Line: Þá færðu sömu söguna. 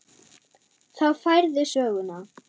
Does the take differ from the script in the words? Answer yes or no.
yes